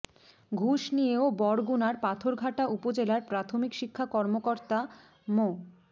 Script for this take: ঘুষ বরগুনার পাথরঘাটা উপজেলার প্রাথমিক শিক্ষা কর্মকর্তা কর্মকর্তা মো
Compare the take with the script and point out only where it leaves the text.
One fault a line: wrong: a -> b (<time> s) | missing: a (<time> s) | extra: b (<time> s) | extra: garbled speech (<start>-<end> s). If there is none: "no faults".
extra: নিয়েও (0.9 s)
missing: কর্মকর্তা (4.8 s)